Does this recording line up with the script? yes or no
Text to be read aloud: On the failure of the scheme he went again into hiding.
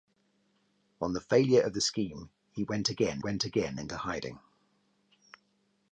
no